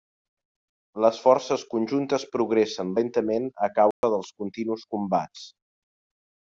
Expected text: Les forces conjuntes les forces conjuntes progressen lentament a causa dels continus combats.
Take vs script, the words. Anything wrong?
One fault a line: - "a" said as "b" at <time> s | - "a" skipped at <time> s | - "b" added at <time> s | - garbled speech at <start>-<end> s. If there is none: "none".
- "les forces conjuntes" skipped at 2.2 s